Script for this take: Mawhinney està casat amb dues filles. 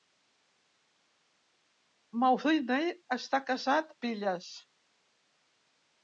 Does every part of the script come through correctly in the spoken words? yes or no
no